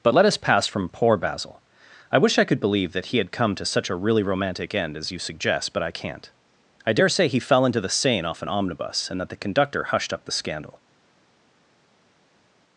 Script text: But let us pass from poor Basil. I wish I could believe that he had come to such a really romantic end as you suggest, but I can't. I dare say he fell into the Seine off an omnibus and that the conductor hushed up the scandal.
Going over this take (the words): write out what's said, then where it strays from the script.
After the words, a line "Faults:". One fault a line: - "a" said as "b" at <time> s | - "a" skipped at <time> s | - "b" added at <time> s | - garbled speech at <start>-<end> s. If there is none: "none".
But let us pass from poor Basil. I wish I could believe that he had come to such a really romantic end as you suggest, but I can't. I dare say he fell into the Seine off an omnibus and that the conductor hushed up the scandal.
Faults:
none